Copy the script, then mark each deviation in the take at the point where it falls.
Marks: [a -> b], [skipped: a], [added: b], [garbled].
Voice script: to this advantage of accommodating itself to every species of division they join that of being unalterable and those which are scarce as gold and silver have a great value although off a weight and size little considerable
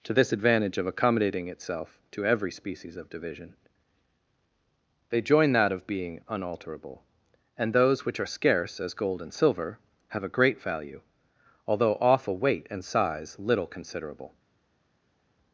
to this advantage of accommodating itself to every species of division they join that of being unalterable and those which are scarce as gold and silver have a great value although off a weight and size little considerable